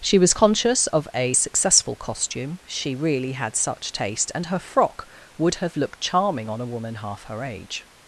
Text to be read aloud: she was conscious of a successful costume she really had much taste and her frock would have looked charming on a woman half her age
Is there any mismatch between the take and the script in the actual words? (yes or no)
yes